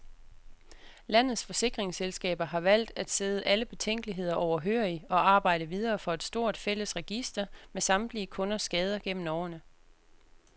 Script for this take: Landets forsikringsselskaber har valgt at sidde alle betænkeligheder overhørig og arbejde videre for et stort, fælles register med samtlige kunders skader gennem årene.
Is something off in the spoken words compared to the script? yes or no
no